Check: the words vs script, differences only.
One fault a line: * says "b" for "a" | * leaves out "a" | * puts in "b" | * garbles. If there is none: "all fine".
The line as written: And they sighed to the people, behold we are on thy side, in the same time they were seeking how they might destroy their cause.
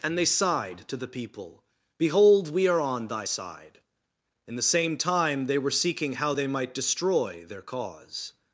all fine